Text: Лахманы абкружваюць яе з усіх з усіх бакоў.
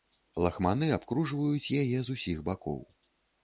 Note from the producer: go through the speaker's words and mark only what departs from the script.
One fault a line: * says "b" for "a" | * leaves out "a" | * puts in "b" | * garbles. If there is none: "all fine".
* leaves out "з усіх"